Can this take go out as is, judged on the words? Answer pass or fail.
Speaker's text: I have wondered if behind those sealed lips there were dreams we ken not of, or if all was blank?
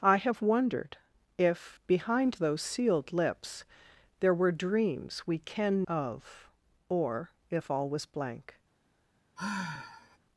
fail